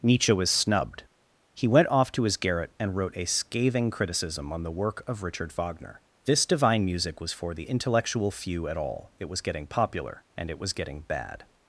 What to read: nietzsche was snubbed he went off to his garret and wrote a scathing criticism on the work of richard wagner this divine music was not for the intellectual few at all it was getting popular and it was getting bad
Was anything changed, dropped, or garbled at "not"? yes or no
yes